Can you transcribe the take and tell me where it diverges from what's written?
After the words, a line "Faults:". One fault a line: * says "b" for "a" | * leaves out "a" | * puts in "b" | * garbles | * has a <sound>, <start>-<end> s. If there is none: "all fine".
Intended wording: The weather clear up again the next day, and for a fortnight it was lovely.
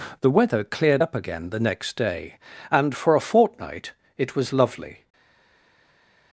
The weather cleared up again the next day, and for a fortnight it was lovely.
Faults:
* says "cleared" for "clear"